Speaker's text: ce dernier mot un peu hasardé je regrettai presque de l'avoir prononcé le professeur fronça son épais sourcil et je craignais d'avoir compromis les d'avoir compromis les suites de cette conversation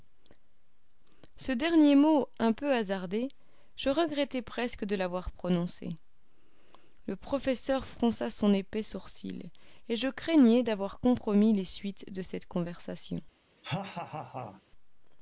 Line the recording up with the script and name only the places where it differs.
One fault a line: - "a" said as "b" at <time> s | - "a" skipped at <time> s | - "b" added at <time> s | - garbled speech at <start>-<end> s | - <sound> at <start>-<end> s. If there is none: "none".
- "d'avoir compromis les" skipped at 11.7 s
- laugh at 13.6-14.6 s